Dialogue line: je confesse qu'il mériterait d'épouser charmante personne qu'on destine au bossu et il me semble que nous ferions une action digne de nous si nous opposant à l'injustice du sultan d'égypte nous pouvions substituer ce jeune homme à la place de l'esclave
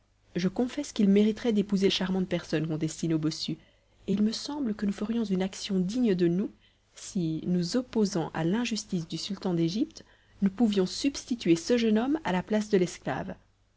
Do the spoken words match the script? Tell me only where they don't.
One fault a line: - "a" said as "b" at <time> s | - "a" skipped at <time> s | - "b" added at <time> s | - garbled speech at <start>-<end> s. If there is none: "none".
none